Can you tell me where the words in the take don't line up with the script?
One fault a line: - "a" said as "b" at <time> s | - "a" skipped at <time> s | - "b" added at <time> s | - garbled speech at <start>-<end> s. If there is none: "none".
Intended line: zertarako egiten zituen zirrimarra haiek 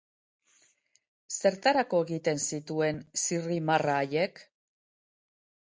none